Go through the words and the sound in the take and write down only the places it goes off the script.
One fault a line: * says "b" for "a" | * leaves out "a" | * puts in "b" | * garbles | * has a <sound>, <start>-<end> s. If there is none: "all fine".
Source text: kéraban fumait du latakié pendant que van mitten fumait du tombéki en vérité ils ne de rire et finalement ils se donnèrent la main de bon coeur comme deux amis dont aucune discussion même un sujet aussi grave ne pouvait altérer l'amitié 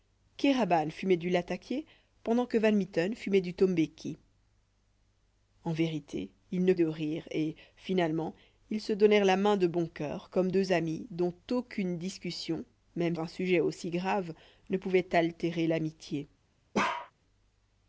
* has a bark, 16.7-17.1 s